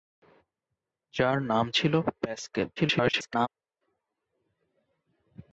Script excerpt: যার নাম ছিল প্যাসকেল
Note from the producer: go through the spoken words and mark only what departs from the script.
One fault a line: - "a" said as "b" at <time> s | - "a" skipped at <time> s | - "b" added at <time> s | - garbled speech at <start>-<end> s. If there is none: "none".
- garbled speech at 2.8-3.5 s